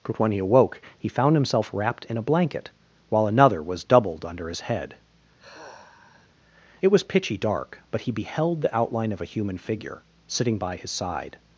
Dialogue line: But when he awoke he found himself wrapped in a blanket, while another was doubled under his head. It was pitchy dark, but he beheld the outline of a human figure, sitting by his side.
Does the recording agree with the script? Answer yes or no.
yes